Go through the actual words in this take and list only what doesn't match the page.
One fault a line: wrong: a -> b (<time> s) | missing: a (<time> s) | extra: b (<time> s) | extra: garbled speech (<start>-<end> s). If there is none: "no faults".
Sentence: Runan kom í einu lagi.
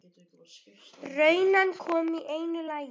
no faults